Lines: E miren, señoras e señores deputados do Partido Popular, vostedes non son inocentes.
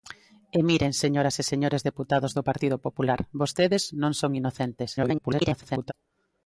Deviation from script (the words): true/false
true